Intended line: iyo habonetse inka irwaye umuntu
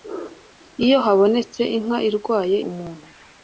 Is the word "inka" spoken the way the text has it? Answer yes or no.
yes